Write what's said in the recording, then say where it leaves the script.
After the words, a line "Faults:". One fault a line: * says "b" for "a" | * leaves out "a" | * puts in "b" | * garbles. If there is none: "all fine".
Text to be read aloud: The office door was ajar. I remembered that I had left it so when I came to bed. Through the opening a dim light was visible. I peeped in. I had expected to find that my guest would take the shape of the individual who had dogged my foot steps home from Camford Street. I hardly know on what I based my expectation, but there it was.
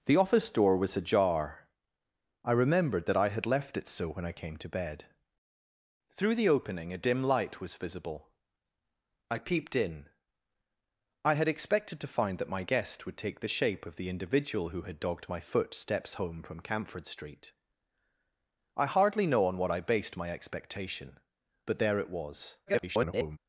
The office door was ajar. I remembered that I had left it so when I came to bed. Through the opening a dim light was visible. I peeped in. I had expected to find that my guest would take the shape of the individual who had dogged my foot steps home from Camford Street. I hardly know on what I based my expectation, but there it was. [garbled]
Faults:
* garbles